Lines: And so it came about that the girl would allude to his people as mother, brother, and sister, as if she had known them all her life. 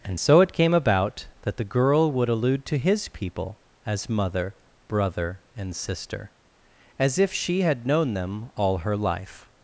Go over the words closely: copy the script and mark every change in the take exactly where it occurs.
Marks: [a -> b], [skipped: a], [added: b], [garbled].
And so it came about that the girl would allude to his people as mother, brother, and sister, as if she had known them all her life.